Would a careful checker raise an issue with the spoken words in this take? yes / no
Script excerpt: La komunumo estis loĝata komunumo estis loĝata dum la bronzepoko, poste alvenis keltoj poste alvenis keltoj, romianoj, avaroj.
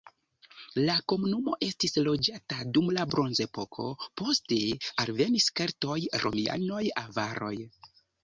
yes